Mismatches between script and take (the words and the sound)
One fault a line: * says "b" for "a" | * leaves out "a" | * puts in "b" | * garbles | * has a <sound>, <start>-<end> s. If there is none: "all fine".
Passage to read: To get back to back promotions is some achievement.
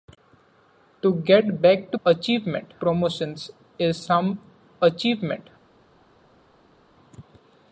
* says "achievement" for "back"